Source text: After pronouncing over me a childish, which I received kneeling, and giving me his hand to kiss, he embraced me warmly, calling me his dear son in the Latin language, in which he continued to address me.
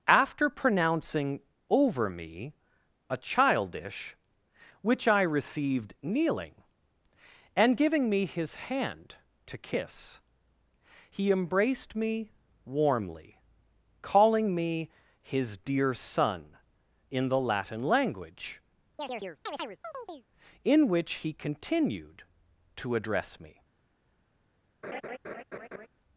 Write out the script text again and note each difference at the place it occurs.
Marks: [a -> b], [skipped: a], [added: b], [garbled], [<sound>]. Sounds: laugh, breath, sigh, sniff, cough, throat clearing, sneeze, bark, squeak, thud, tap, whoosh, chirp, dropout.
After pronouncing over me a childish, which I received kneeling, and giving me his hand to kiss, he embraced me warmly, calling me his dear son in the Latin language, [chirp] in which he continued to address me. [laugh]